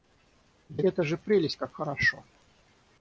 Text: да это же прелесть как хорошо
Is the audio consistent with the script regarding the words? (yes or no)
yes